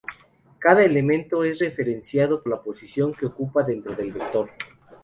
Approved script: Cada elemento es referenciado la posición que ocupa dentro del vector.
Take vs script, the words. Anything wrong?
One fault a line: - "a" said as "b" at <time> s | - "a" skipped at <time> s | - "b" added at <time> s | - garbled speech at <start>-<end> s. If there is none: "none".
none